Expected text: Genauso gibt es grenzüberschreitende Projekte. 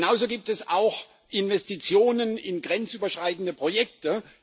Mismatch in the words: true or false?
true